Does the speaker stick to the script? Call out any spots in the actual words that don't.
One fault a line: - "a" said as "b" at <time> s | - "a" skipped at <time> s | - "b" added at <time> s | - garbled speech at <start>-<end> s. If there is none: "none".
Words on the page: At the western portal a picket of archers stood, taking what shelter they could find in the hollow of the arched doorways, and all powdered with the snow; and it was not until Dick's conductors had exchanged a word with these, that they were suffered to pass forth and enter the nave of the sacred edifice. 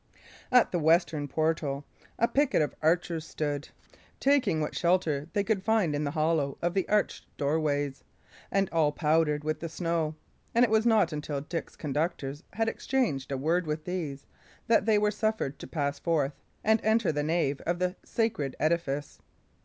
none